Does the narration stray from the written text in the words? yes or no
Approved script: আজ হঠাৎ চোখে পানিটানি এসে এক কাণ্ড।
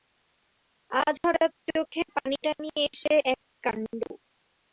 no